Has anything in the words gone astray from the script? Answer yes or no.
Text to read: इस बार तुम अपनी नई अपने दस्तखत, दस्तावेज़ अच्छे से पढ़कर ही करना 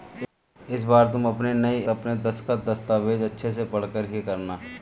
no